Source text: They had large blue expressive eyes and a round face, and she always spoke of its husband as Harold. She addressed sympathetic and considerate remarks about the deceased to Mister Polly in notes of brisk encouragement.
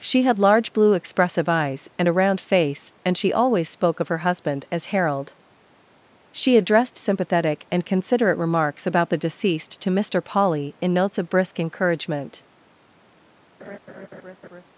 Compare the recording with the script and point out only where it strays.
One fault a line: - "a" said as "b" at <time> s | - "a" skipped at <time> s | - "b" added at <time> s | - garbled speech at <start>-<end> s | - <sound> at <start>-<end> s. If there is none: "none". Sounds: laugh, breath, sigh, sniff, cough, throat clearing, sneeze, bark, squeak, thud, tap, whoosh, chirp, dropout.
- "They" said as "She" at 0.0 s
- "its" said as "her" at 4.1 s
- laugh at 13.6-14.6 s